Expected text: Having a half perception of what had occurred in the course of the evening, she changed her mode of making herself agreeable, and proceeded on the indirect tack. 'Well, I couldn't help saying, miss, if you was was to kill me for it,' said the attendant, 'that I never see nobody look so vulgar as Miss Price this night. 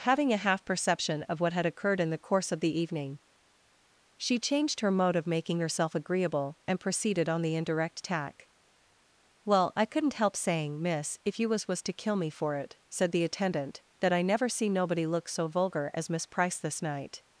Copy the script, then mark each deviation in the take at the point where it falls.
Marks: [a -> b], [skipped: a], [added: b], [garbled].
Having a half perception of what had occurred in the course of the evening, she changed her mode of making herself agreeable, and proceeded on the indirect tack. 'Well, I couldn't help saying, miss, if you was was to kill me for it,' said the attendant, 'that I never see nobody look so vulgar as Miss Price this night.